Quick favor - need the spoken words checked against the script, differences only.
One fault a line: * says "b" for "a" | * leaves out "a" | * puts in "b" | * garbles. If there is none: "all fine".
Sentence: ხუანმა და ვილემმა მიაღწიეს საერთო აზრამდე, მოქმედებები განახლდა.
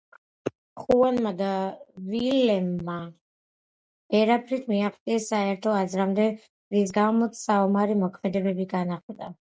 * puts in "ვერაფრით"
* puts in "რის გამოც საომარი"